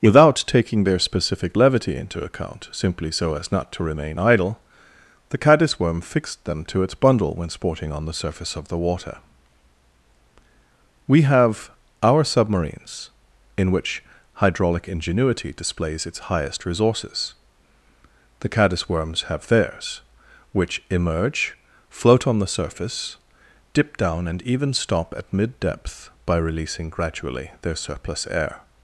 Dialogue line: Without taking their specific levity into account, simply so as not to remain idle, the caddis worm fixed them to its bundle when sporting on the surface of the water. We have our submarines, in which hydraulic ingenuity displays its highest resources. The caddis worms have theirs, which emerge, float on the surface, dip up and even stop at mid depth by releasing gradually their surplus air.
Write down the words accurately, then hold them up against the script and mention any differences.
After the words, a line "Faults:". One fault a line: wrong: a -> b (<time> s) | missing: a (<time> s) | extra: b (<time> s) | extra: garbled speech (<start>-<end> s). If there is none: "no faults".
Without taking their specific levity into account, simply so as not to remain idle, the caddis worm fixed them to its bundle when sporting on the surface of the water. We have our submarines, in which hydraulic ingenuity displays its highest resources. The caddis worms have theirs, which emerge, float on the surface, dip down and even stop at mid depth by releasing gradually their surplus air.
Faults:
wrong: up -> down (24.0 s)